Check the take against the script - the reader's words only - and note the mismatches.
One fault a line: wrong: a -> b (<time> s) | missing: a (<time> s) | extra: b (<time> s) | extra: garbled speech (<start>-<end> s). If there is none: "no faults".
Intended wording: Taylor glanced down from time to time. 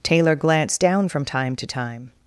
no faults